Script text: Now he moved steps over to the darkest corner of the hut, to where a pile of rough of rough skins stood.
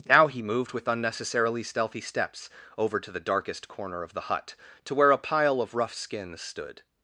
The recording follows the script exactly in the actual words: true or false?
false